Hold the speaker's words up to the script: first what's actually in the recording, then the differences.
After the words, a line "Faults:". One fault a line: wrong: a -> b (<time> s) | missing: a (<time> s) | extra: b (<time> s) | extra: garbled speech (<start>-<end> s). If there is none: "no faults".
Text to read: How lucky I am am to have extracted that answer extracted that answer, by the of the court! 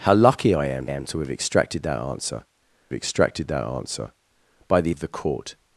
How lucky I am am to have extracted that answer extracted that answer, by the of the court!
Faults:
no faults